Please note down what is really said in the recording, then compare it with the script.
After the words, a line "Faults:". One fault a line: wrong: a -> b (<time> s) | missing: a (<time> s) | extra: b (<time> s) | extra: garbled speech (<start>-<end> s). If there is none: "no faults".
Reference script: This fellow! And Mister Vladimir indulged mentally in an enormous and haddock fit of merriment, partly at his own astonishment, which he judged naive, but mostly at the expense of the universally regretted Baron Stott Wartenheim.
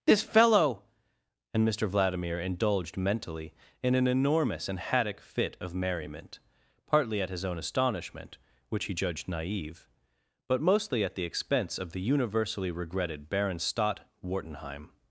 This fellow! And Mister Vladimir indulged mentally in an enormous and haddock fit of merriment, partly at his own astonishment, which he judged naive, but mostly at the expense of the universally regretted Baron Stott Wartenheim.
Faults:
no faults